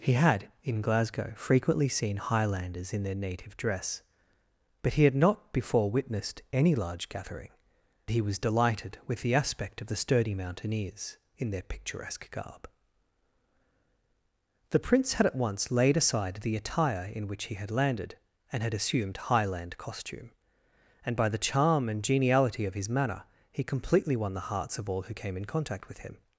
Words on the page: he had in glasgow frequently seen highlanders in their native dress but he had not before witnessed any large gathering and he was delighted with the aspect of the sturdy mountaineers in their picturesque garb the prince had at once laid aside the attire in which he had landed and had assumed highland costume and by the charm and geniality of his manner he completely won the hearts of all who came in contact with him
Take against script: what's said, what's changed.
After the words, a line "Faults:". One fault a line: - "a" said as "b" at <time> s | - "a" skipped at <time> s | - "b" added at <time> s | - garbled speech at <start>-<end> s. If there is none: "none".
he had in glasgow frequently seen highlanders in their native dress but he had not before witnessed any large gathering he was delighted with the aspect of the sturdy mountaineers in their picturesque garb the prince had at once laid aside the attire in which he had landed and had assumed highland costume and by the charm and geniality of his manner he completely won the hearts of all who came in contact with him
Faults:
- "and" skipped at 7.5 s